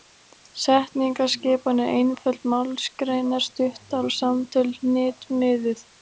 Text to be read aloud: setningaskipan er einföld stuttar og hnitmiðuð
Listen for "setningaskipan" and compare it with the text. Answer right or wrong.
right